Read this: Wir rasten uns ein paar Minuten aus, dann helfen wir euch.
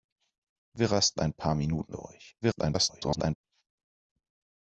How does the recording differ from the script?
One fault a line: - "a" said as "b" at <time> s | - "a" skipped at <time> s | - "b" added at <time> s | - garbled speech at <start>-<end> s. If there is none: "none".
- "uns" skipped at 1.2 s
- "aus dann helfen" skipped at 2.0 s
- garbled speech at 2.4-3.4 s